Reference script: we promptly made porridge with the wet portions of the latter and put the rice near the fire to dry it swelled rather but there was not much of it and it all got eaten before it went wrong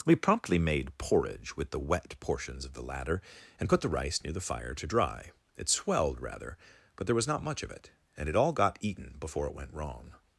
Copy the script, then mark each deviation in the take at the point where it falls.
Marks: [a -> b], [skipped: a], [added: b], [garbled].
we promptly made porridge with the wet portions of the latter and put the rice near the fire to dry it swelled rather but there was not much of it and it all got eaten before it went wrong